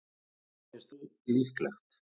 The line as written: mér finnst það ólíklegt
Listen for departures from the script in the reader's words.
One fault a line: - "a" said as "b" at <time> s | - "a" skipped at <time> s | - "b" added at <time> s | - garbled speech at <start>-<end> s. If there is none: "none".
- "það" skipped at 0.9 s